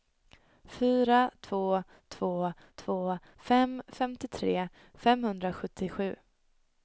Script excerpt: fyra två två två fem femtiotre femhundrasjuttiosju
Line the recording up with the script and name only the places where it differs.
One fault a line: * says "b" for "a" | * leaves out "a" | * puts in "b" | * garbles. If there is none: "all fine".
all fine